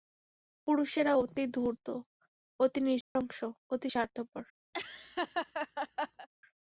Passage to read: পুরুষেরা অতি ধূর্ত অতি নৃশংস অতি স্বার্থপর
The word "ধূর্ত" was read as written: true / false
true